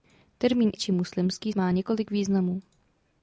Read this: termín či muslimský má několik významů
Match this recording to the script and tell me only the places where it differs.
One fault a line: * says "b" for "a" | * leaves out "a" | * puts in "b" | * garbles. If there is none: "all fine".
all fine